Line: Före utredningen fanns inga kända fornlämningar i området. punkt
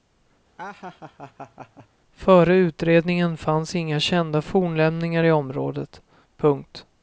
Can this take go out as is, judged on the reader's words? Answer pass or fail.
pass